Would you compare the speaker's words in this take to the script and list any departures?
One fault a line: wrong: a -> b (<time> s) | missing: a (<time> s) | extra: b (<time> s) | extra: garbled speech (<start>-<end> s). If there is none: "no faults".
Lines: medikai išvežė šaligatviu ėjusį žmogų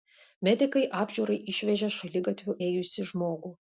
extra: apžiūrai (1.0 s)